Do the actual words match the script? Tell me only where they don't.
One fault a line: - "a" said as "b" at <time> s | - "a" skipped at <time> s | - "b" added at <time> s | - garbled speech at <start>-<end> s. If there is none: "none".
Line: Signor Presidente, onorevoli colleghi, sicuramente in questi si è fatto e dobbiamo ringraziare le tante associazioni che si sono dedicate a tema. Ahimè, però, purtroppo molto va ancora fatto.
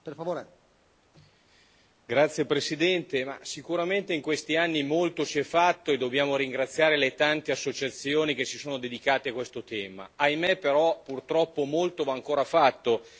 - "anni molto" added at 4.5 s
- "questo" added at 9.3 s